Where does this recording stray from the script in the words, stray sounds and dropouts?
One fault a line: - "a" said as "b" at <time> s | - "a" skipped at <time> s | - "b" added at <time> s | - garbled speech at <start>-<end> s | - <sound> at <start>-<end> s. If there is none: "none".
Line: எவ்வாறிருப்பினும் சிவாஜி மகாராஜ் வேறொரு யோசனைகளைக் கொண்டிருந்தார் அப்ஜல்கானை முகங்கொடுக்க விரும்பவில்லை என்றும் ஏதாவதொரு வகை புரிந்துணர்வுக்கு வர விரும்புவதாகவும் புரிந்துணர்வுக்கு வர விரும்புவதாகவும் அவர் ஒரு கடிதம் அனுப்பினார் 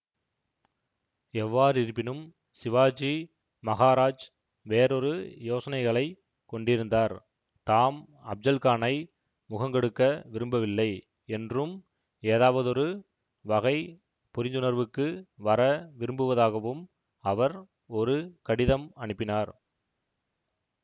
- "தாம்" added at 7.7 s
- "புரிந்துணர்வுக்கு வர விரும்புவதாகவும்" skipped at 16.8 s